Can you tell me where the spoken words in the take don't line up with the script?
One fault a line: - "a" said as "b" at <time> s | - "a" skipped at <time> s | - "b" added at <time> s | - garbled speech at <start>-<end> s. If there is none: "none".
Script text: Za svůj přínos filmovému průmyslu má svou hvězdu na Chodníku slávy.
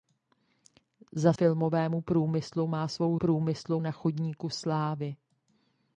- "svůj přínos" skipped at 1.3 s
- "hvězdu" said as "průmyslu" at 3.1 s